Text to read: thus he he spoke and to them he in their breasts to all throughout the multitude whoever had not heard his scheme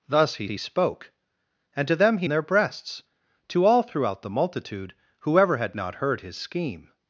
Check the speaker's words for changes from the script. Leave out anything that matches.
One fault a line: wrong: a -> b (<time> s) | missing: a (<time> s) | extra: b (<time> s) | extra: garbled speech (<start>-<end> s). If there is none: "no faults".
no faults